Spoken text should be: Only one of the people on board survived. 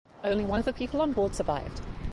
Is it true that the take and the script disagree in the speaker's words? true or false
false